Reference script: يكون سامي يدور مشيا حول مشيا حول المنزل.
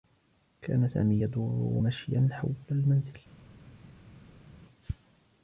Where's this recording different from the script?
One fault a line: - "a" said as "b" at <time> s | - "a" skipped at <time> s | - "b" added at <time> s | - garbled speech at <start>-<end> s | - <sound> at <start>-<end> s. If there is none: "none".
- "يكون" said as "كان" at 0.6 s
- "مشيا حول" skipped at 2.5 s